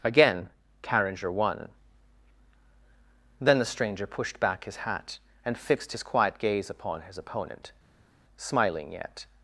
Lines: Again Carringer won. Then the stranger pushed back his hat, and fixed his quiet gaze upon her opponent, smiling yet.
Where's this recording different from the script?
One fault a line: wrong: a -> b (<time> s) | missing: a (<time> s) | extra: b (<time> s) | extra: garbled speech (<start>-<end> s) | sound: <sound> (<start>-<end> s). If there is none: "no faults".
wrong: her -> his (7.0 s)